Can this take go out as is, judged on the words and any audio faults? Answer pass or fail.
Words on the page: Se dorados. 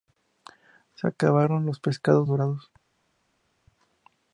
fail